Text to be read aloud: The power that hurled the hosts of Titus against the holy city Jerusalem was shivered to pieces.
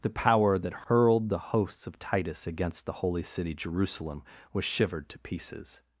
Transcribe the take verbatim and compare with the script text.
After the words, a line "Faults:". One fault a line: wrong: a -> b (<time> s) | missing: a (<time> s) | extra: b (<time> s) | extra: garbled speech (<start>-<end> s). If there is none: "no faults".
The power that hurled the hosts of Titus against the holy city Jerusalem was shivered to pieces.
Faults:
no faults